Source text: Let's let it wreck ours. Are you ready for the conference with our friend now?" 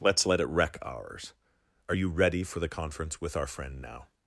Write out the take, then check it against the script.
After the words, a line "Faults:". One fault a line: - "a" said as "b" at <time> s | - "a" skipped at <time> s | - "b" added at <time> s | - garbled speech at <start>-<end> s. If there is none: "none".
Let's let it wreck ours. Are you ready for the conference with our friend now?"
Faults:
none